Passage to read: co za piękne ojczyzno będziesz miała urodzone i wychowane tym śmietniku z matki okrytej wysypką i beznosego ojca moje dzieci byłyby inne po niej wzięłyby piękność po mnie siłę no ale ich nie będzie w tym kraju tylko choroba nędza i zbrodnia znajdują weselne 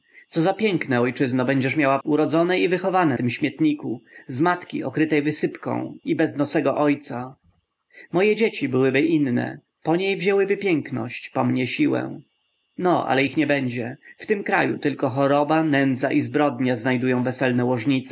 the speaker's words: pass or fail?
pass